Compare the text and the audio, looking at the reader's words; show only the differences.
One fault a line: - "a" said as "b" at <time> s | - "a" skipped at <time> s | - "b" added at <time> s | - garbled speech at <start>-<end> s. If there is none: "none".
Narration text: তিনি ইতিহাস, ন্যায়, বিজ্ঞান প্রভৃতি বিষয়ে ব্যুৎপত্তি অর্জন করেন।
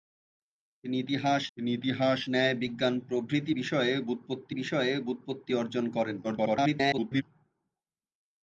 - "তিনি ইতিহাস" added at 1.6 s
- "বিষয়ে ব্যুৎপত্তি" added at 4.5 s
- garbled speech at 6.2-7.2 s